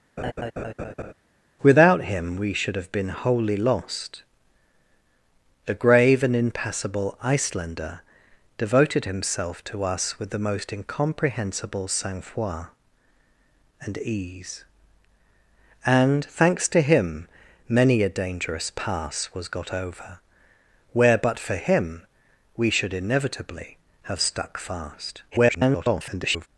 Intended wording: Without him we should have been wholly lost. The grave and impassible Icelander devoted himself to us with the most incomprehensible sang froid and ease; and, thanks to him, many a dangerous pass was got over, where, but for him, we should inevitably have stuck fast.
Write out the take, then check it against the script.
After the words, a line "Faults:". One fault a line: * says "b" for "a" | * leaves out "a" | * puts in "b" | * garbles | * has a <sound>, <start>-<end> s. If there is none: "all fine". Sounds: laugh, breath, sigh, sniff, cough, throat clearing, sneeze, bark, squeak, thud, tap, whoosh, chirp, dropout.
Without him we should have been wholly lost. The grave and impassible Icelander devoted himself to us with the most incomprehensible sang froid and ease; and, thanks to him, many a dangerous pass was got over, where, but for him, we should inevitably have stuck fast. [garbled]
Faults:
* has a laugh, 0.2-1.1 s
* garbles